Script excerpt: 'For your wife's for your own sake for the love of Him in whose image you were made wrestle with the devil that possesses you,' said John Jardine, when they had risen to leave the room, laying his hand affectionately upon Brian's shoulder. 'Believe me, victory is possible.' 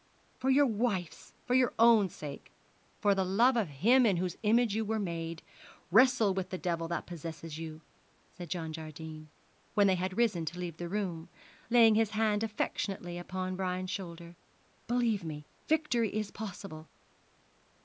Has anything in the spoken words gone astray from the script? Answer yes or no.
no